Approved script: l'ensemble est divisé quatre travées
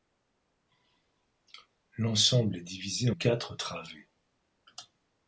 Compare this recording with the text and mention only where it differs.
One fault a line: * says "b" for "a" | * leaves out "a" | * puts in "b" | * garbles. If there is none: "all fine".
all fine